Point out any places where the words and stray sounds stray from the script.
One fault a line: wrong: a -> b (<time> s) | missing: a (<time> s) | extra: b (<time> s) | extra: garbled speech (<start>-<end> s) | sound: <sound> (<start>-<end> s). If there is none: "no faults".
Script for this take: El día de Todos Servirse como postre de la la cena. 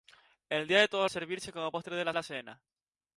no faults